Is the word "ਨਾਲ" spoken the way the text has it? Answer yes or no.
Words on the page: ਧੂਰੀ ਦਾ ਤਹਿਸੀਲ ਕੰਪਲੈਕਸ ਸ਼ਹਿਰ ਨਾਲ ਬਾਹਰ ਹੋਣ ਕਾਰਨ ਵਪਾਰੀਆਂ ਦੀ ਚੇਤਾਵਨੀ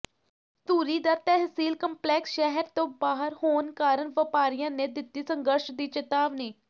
no